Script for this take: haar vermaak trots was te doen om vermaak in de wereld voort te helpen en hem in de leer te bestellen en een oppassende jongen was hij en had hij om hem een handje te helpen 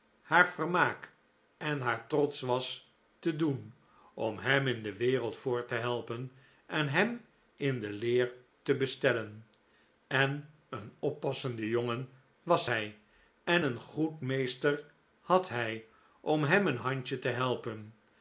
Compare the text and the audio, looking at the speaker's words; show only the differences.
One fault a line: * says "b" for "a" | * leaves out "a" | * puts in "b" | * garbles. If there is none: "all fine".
* puts in "en haar"
* says "hem" for "vermaak"
* puts in "een goed meester"